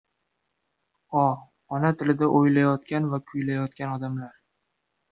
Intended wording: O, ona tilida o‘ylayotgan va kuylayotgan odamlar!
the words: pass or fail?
pass